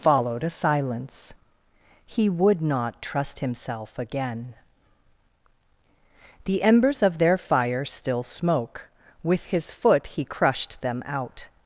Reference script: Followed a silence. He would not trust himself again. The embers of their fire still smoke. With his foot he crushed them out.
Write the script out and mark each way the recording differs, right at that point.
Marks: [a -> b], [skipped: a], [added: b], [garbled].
Followed a silence. He would not trust himself again. The embers of their fire still smoke. With his foot he crushed them out.